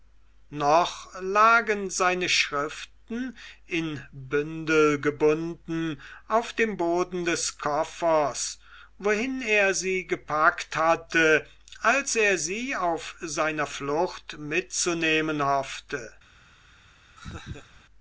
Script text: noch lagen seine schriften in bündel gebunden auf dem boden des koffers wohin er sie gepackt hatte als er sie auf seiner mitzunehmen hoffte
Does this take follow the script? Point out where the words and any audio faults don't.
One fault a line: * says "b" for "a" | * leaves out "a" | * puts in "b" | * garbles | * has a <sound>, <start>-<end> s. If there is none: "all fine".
* puts in "flucht"
* has a laugh, 17.2-17.8 s